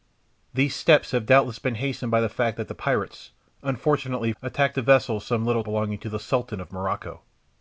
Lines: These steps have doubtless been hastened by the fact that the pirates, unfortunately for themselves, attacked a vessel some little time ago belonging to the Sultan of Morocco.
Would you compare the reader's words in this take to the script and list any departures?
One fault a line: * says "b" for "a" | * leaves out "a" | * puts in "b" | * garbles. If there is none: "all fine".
* leaves out "for themselves"
* leaves out "time ago"